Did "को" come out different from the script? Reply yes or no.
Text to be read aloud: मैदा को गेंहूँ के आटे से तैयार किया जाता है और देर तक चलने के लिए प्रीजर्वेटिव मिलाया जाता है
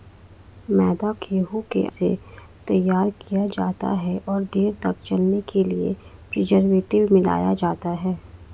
yes